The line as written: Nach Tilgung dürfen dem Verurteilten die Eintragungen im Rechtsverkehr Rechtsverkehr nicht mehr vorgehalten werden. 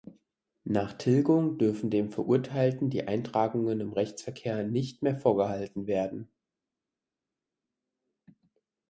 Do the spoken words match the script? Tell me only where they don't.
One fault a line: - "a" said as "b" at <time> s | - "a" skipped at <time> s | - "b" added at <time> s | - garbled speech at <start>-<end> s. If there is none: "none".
- "Rechtsverkehr" skipped at 4.6 s